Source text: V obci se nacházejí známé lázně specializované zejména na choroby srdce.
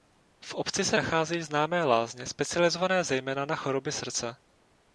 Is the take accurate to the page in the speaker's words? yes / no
yes